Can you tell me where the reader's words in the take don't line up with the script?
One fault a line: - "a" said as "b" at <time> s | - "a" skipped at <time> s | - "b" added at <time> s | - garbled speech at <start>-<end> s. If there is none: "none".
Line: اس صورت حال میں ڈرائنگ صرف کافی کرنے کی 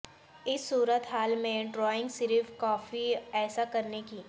- "ایسا" added at 3.3 s